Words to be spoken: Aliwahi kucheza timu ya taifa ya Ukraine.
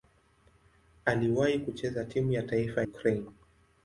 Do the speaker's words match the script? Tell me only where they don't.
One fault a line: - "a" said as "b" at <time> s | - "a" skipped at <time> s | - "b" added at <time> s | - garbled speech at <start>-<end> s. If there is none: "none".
- "ya" skipped at 2.8 s